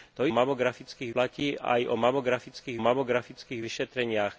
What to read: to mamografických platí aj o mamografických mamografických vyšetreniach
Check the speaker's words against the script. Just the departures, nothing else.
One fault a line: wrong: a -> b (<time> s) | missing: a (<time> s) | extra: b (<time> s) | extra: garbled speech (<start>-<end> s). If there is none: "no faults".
no faults